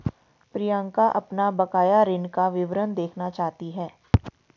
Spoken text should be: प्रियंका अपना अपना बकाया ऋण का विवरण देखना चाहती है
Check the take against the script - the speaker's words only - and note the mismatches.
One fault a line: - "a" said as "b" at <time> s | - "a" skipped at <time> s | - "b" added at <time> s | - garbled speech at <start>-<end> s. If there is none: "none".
- "अपना" skipped at 1.5 s